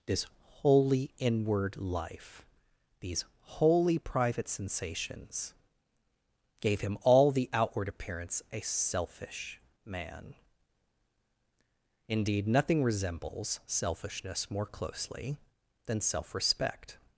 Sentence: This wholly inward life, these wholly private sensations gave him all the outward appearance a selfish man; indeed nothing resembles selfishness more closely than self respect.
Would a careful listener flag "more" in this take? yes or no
no